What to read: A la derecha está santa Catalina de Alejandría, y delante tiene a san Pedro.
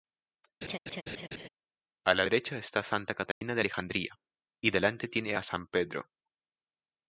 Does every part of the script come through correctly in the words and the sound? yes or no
no